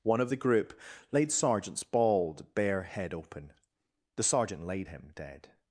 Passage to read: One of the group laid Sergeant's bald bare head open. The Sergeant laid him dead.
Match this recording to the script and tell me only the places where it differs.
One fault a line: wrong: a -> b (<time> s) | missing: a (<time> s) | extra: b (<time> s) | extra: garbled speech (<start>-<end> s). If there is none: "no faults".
no faults